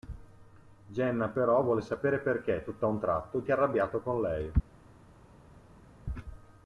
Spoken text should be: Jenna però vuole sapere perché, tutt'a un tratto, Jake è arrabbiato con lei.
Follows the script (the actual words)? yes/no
no